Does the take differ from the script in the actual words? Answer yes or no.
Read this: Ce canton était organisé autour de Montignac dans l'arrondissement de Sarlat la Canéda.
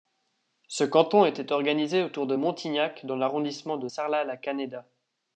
no